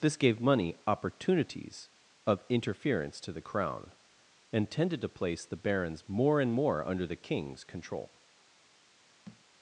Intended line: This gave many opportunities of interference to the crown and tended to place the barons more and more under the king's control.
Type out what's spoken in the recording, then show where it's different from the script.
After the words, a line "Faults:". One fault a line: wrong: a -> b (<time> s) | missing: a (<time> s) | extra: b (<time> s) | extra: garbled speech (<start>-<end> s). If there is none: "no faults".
This gave money opportunities of interference to the crown and tended to place the barons more and more under the king's control.
Faults:
wrong: many -> money (0.4 s)